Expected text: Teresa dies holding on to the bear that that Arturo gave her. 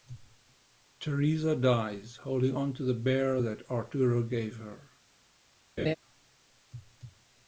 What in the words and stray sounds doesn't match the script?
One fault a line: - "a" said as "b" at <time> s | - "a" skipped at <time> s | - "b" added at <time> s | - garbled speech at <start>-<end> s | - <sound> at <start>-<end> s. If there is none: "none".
- "that" skipped at 3.6 s
- laugh at 5.8-6.0 s